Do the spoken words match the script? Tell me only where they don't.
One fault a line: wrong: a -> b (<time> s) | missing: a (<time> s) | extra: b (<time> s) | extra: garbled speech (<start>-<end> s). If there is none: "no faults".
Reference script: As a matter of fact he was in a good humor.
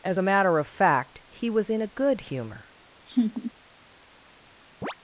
no faults